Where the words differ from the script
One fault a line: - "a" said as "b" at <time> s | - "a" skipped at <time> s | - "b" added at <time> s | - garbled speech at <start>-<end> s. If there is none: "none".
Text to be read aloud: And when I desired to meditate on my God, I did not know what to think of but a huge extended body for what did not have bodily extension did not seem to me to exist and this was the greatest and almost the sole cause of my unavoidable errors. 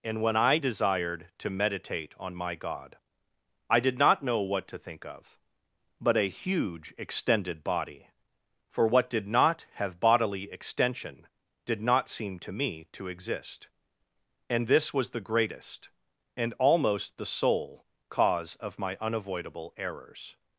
none